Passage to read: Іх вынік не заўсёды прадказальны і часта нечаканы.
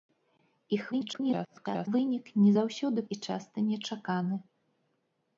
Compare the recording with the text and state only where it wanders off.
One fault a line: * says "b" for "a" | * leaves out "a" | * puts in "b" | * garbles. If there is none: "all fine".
* garbles
* leaves out "прадказальны"